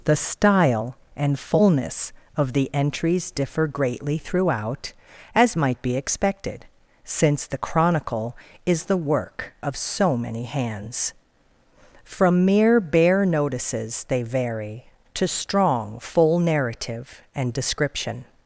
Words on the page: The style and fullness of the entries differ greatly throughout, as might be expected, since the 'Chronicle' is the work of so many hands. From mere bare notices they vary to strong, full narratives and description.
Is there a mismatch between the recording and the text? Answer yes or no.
yes